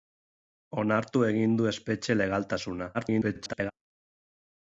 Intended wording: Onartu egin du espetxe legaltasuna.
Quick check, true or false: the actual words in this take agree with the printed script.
false